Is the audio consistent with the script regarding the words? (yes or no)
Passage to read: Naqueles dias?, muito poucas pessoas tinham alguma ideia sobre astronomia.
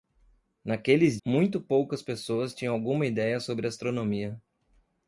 no